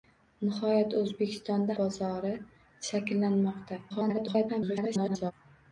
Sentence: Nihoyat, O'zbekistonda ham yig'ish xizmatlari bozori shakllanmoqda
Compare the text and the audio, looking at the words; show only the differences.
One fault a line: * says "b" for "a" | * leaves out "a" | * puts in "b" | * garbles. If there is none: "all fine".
* leaves out "ham yig'ish xizmatlari"
* garbles